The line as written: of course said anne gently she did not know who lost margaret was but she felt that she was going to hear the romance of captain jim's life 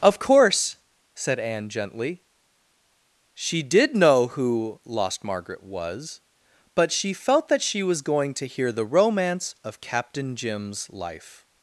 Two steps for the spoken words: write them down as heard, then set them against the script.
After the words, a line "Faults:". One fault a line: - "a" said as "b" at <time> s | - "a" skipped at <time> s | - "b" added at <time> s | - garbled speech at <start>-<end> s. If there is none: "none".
of course said anne gently she did know who lost margaret was but she felt that she was going to hear the romance of captain jim's life
Faults:
- "not" skipped at 4.0 s